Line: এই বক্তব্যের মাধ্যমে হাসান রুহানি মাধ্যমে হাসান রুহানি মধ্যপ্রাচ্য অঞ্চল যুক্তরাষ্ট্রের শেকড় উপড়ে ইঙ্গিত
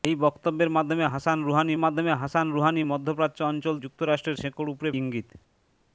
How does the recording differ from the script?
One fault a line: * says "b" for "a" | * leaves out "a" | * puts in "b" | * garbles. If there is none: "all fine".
all fine